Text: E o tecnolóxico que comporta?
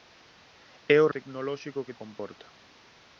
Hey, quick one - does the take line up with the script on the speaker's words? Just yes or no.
yes